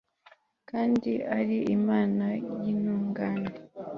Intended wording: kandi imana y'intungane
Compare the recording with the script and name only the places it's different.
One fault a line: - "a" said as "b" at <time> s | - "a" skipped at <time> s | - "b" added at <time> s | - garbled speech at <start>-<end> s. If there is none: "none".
- "ari" added at 1.4 s